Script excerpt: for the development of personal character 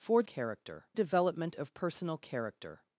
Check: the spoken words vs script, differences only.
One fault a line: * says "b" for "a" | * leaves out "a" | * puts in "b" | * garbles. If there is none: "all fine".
* says "character" for "the"